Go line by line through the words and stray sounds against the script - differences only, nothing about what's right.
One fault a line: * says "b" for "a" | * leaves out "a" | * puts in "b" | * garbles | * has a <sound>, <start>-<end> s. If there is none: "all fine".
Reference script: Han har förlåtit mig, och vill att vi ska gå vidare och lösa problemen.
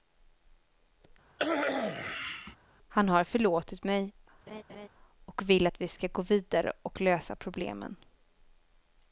* has a cough, 1.4-2.6 s
* has a laugh, 4.5-4.9 s